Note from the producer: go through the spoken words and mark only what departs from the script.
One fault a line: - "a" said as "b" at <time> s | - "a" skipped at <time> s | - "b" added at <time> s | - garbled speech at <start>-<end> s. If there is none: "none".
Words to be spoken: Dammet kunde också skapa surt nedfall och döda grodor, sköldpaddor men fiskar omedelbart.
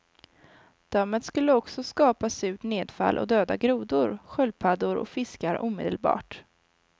- "kunde" said as "skulle" at 1.2 s
- "men" said as "och" at 5.0 s